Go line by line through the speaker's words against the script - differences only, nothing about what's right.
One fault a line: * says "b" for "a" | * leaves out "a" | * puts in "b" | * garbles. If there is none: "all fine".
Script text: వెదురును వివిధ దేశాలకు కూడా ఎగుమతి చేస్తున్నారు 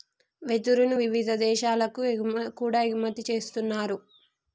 all fine